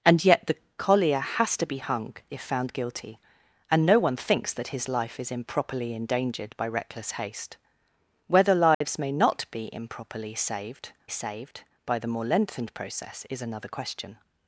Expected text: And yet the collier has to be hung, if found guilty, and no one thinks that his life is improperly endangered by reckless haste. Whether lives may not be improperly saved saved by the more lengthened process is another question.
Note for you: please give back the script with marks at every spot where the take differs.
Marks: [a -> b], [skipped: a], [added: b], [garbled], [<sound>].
And yet the collier has to be hung, if found guilty, and no one thinks that his life is improperly endangered by reckless haste. Whether lives [dropout] may not be improperly saved saved by the more lengthened process is another question.